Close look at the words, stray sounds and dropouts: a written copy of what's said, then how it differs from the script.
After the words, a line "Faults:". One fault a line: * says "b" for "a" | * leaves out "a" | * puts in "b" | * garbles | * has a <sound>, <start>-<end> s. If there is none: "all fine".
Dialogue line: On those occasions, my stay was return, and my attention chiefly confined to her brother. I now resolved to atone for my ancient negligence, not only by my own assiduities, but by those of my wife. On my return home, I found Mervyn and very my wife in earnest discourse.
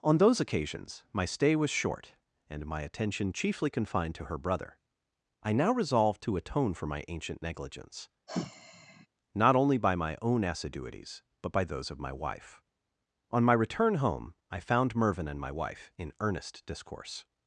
On those occasions, my stay was short, and my attention chiefly confined to her brother. I now resolved to atone for my ancient negligence, not only by my own assiduities, but by those of my wife. On my return home, I found Mervyn and my wife in earnest discourse.
Faults:
* says "short" for "return"
* has a sigh, 8.3-9.1 s
* leaves out "very"